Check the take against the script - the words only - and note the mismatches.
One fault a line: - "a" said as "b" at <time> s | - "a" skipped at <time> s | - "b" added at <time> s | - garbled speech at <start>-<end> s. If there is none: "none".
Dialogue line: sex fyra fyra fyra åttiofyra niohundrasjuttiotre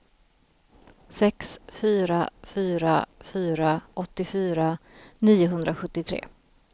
none